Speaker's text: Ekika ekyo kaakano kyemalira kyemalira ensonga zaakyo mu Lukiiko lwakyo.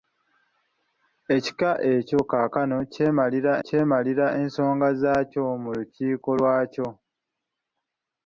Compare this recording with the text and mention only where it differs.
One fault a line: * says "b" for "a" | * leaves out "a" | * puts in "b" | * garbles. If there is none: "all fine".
all fine